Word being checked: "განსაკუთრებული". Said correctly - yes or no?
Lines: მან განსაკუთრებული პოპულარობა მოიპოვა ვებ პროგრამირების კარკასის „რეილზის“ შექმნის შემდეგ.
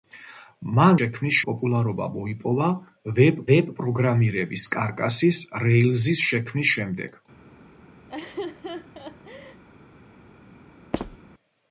no